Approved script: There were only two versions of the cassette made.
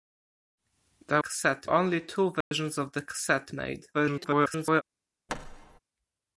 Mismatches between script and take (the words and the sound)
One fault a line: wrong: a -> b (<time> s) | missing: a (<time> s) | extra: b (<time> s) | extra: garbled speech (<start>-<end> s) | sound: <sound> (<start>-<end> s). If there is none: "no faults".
wrong: were -> cassette (1.2 s)
sound: dropout (2.4-2.5 s)
extra: garbled speech (3.9-4.8 s)
sound: thud (5.3-5.8 s)